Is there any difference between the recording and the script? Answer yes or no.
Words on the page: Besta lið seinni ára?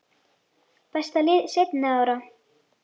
no